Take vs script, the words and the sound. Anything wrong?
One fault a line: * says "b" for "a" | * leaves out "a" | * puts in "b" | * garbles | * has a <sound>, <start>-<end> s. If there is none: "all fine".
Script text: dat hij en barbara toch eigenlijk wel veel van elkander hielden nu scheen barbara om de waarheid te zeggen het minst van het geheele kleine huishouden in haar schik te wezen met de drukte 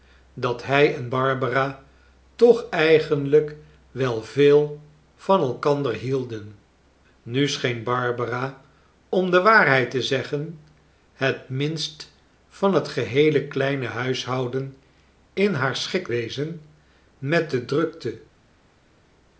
* leaves out "te"